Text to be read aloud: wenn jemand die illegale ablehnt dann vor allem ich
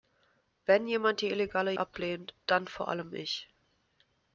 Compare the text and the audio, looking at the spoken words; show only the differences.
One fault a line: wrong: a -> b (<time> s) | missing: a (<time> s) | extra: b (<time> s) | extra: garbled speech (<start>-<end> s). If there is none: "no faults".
no faults